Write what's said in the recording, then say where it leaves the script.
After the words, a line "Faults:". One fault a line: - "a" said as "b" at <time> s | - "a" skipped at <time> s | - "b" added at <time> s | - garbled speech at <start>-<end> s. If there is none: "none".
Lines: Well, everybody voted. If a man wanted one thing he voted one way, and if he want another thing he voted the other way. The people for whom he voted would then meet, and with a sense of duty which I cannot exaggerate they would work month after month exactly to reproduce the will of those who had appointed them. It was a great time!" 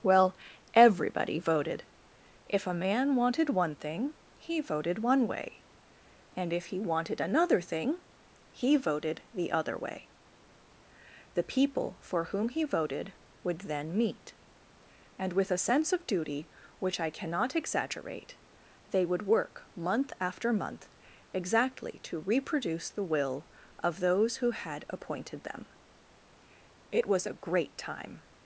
Well, everybody voted. If a man wanted one thing he voted one way, and if he wanted another thing he voted the other way. The people for whom he voted would then meet, and with a sense of duty which I cannot exaggerate they would work month after month exactly to reproduce the will of those who had appointed them. It was a great time!"
Faults:
- "want" said as "wanted" at 6.8 s